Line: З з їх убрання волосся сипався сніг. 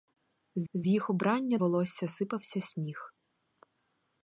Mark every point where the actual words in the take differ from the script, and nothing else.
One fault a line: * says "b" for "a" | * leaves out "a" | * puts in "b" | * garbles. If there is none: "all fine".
all fine